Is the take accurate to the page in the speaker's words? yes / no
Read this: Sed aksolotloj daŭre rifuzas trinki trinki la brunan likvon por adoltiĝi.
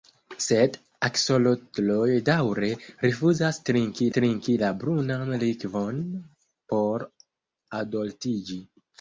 yes